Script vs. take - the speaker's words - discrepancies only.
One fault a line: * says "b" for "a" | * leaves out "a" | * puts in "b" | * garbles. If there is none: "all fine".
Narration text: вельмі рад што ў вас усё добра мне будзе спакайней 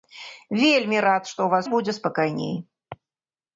* leaves out "усё добра мне"